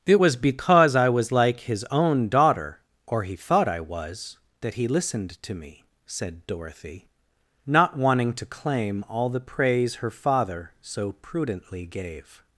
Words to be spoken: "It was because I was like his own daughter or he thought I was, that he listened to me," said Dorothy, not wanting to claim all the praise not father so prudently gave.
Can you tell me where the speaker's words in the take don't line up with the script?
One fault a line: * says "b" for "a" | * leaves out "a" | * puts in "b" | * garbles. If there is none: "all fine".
* says "her" for "not"